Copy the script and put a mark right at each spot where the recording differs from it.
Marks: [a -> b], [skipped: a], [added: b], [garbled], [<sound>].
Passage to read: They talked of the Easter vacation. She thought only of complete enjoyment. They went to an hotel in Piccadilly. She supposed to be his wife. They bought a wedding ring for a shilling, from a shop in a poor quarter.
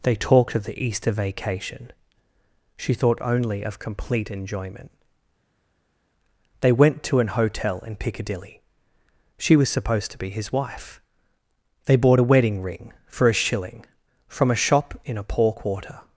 They talked of the Easter vacation. She thought only of complete enjoyment. They went to an hotel in Piccadilly. She [added: was] supposed to be his wife. They bought a wedding ring for a shilling, from a shop in a poor quarter.